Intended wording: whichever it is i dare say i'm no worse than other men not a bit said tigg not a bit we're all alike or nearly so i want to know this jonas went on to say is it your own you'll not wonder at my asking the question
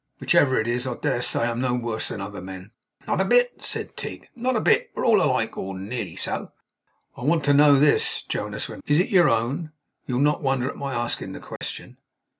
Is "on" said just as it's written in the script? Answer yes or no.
no